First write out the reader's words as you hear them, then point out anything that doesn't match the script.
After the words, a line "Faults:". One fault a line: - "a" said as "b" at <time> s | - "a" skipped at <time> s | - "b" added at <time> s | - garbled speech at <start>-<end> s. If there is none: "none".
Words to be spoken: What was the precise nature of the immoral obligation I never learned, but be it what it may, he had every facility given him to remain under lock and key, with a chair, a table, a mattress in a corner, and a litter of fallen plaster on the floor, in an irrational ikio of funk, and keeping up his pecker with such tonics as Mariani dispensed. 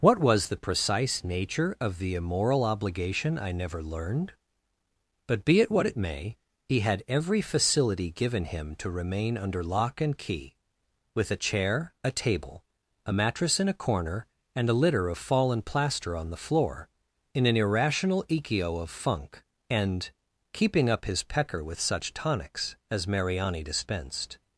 What was the precise nature of the immoral obligation I never learned, but be it what it may, he had every facility given him to remain under lock and key, with a chair, a table, a mattress in a corner, and a litter of fallen plaster on the floor, in an irrational ikio of funk, and keeping up his pecker with such tonics as Mariani dispensed.
Faults:
none